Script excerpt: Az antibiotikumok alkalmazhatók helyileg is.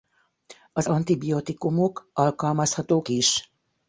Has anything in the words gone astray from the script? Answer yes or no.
yes